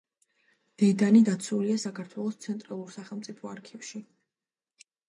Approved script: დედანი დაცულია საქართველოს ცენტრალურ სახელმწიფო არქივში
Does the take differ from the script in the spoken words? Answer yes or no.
no